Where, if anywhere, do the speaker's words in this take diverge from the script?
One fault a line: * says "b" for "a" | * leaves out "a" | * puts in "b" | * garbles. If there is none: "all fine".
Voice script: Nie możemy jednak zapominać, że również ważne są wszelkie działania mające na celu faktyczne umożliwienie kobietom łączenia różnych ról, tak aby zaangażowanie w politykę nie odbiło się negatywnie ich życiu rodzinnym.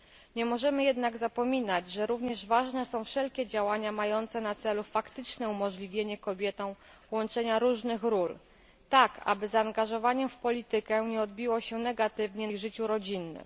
all fine